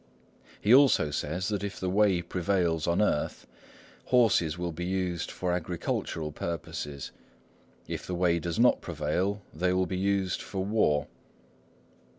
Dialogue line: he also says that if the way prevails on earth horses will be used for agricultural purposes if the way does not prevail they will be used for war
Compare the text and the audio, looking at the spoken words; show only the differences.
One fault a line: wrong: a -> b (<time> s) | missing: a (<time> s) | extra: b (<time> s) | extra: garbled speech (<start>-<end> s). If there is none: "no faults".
no faults